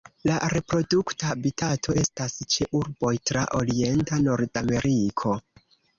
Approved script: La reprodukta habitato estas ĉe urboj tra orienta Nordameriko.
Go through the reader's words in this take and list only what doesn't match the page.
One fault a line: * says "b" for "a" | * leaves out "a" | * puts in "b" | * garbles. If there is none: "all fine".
all fine